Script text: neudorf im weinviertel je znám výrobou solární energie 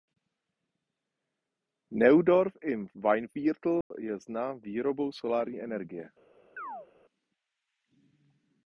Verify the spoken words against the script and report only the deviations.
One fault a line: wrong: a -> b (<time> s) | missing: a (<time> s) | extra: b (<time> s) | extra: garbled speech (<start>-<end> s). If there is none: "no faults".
no faults